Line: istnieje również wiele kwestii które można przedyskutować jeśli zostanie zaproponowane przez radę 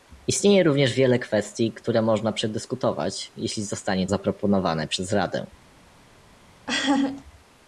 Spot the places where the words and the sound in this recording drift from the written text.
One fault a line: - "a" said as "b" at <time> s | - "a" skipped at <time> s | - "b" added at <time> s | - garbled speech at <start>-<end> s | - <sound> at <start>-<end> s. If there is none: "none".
- laugh at 6.7-7.2 s